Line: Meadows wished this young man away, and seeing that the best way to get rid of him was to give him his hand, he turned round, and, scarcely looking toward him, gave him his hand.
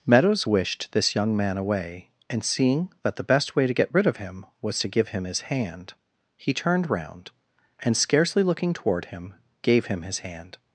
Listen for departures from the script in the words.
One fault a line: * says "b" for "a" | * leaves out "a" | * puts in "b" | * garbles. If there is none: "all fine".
all fine